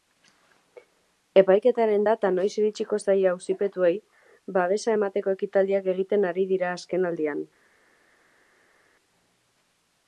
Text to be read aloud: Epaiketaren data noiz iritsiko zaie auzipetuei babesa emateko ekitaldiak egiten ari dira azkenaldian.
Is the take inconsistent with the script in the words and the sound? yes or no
no